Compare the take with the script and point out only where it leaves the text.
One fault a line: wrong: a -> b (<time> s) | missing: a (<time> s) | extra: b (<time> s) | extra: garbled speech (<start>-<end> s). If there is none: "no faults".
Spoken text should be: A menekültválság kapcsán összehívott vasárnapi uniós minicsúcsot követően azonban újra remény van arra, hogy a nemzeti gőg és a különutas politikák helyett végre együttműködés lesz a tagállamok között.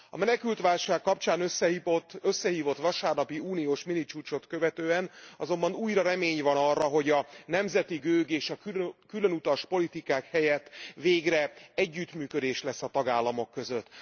no faults